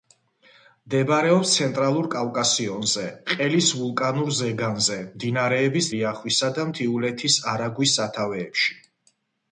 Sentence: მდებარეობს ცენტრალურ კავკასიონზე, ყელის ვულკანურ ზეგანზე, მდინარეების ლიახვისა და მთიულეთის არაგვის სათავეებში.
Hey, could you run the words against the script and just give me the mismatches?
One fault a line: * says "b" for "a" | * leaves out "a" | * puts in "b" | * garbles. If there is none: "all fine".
all fine